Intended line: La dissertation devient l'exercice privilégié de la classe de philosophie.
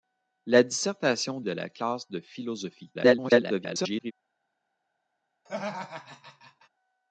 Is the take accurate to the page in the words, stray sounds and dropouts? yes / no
no